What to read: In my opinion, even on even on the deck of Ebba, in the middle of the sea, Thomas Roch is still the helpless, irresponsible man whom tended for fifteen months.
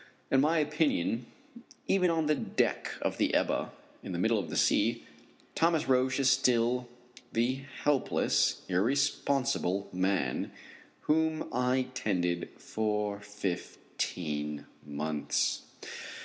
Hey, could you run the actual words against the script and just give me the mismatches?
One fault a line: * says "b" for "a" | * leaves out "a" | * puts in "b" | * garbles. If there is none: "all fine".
* leaves out "even on"
* puts in "the"
* puts in "I"